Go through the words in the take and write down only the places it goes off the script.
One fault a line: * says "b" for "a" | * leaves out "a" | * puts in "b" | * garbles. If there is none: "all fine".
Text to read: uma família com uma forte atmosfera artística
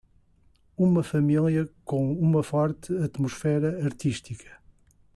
all fine